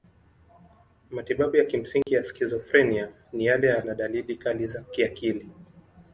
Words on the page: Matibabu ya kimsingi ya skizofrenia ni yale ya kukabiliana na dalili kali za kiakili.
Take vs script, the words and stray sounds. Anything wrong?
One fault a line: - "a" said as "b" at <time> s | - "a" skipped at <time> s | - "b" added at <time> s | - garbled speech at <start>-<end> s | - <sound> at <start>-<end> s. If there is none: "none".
- dropout at 2.0-2.1 s
- "kukabiliana" skipped at 3.8 s